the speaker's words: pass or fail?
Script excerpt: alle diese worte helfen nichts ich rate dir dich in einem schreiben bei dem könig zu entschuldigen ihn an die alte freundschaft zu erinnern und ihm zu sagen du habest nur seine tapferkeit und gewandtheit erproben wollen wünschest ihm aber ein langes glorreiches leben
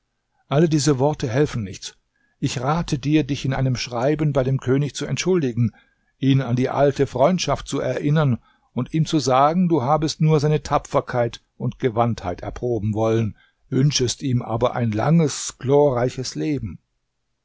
pass